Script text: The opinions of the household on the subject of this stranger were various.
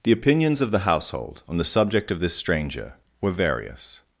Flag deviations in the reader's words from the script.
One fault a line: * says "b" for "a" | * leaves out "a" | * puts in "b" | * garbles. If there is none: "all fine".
all fine